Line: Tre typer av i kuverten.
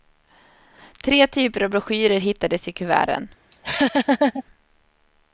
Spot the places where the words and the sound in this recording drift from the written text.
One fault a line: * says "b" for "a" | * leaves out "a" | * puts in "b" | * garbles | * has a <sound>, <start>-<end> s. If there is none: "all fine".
* puts in "broschyrer hittades"
* has a laugh, 3.5-4.4 s